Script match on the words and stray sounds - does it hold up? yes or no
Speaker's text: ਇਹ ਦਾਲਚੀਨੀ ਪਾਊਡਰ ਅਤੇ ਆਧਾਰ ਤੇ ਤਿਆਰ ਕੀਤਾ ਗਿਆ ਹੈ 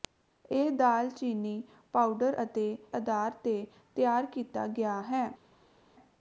yes